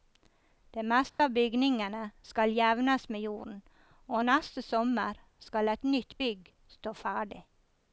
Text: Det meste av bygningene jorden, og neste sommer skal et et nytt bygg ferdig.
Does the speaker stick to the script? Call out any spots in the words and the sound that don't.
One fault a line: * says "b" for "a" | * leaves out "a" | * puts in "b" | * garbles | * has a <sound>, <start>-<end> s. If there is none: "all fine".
* has a dropout, 1.1-1.2 s
* puts in "skal jevnes med"
* leaves out "et"
* puts in "stå"